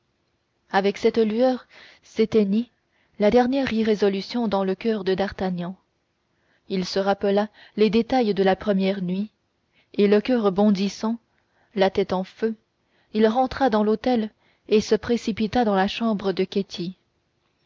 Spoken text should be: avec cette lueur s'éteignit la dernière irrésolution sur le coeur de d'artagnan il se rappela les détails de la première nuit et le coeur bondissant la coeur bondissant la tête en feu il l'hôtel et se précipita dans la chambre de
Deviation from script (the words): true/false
true